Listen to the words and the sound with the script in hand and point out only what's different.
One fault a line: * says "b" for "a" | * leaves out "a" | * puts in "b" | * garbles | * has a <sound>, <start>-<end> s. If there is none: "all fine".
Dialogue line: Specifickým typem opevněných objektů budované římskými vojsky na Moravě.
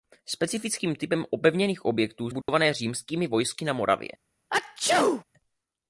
* has a dropout, 2.4-2.5 s
* has a sneeze, 4.5-5.2 s